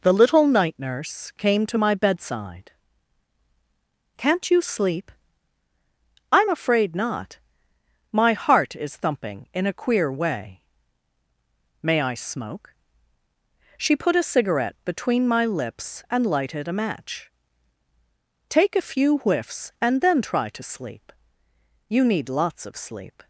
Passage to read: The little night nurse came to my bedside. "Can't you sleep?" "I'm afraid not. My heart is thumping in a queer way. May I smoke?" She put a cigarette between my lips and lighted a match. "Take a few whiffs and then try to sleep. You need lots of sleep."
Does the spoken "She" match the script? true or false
true